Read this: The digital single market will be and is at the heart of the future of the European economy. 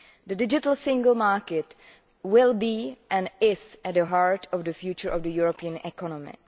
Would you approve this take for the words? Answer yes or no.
yes